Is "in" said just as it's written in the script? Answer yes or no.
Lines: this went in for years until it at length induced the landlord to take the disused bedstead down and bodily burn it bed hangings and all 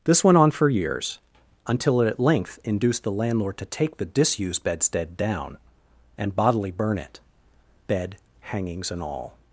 no